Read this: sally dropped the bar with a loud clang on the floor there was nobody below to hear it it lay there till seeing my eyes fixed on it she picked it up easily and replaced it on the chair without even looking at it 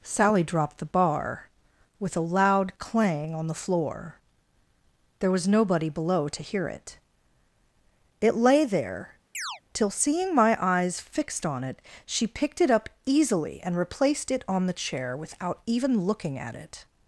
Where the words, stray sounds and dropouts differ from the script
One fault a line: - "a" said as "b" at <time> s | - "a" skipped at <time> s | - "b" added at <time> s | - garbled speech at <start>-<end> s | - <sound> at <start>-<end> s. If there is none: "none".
- chirp at 9.3-9.6 s